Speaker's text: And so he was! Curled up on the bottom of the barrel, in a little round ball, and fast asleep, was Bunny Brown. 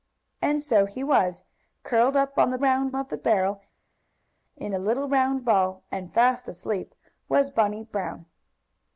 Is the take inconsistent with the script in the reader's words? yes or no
yes